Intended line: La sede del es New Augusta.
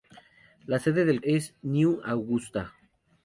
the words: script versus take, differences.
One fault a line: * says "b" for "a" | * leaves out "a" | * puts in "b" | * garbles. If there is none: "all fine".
all fine